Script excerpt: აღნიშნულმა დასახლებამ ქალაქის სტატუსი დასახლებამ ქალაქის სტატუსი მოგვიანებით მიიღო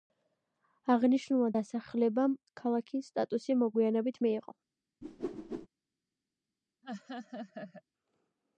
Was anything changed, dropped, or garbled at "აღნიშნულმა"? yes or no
no